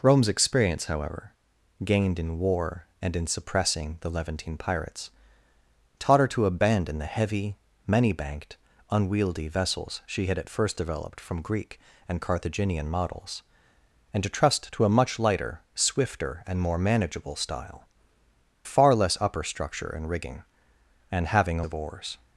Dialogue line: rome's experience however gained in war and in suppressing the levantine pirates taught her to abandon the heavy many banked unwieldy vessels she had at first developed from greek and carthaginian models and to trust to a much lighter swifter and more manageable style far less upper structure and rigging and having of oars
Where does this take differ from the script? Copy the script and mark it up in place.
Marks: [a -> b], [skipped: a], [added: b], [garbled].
rome's experience however gained in war and in suppressing the levantine pirates taught her to abandon the heavy many banked unwieldy vessels she had at first developed from greek and carthaginian models and to trust to a much lighter swifter and more manageable style far less upper structure and rigging and having of oars